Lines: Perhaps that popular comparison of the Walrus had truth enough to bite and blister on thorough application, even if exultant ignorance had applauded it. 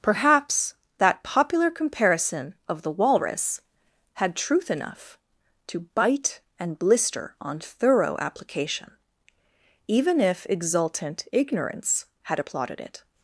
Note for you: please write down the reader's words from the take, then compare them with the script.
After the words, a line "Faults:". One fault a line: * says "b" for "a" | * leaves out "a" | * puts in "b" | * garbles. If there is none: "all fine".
Perhaps that popular comparison of the Walrus had truth enough to bite and blister on thorough application, even if exultant ignorance had applauded it.
Faults:
all fine